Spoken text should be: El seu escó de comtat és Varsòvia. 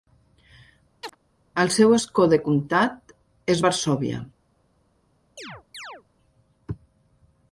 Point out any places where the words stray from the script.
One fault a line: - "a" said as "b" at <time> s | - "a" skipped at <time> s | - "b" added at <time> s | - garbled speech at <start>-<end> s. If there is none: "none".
none